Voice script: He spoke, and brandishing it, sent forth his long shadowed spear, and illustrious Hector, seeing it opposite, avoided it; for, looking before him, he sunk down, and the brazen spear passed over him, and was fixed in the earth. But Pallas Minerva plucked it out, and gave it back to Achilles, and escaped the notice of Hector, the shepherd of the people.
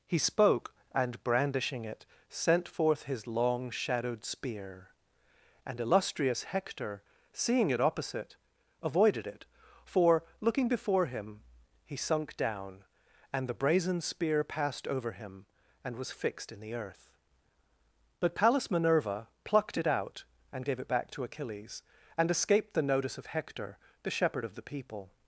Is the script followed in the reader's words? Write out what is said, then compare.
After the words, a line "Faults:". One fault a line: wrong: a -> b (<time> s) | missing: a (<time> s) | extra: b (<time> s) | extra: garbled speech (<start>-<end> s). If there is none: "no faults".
He spoke, and brandishing it, sent forth his long shadowed spear, and illustrious Hector, seeing it opposite, avoided it; for, looking before him, he sunk down, and the brazen spear passed over him, and was fixed in the earth. But Pallas Minerva plucked it out, and gave it back to Achilles, and escaped the notice of Hector, the shepherd of the people.
Faults:
no faults